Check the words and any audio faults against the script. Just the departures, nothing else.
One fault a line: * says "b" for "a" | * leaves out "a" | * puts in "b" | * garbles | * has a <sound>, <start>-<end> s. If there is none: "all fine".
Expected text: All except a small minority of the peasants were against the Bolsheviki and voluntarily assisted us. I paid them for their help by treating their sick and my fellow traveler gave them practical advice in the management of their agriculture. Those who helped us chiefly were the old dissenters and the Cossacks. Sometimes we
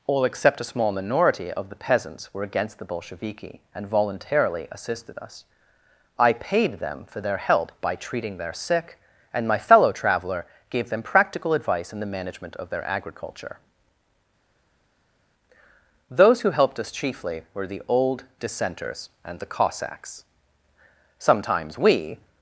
all fine